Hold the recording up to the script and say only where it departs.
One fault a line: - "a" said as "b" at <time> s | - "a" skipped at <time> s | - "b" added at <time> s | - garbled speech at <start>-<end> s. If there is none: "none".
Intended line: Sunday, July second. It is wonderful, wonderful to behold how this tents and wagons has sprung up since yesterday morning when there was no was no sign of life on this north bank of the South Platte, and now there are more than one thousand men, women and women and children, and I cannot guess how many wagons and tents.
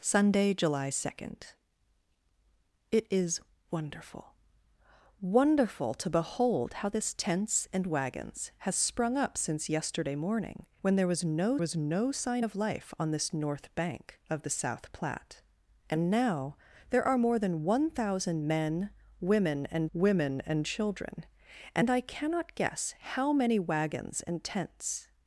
none